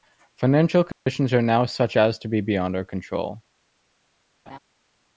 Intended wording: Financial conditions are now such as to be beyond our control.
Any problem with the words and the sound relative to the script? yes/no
yes